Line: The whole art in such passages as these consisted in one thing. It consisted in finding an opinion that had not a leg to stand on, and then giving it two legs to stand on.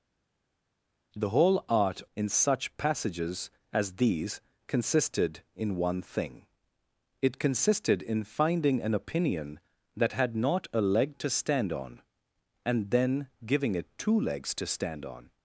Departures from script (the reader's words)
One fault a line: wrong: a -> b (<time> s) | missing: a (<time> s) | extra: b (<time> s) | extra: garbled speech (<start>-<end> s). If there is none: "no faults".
no faults